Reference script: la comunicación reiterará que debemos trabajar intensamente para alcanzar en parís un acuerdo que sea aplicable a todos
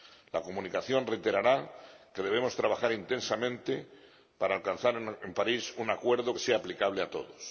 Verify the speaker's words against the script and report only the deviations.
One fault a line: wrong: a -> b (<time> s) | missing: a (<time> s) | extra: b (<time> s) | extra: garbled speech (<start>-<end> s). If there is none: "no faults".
no faults